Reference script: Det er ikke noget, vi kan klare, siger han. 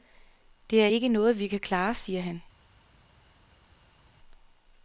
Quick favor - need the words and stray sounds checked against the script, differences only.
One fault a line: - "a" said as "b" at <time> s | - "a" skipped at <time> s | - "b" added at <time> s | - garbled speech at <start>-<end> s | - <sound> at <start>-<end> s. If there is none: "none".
none